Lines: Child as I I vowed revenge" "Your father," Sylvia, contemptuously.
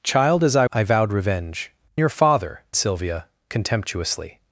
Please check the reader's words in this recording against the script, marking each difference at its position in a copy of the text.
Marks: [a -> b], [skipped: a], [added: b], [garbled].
Child as I I vowed revenge" "Your father," Sylvia, contemptuously.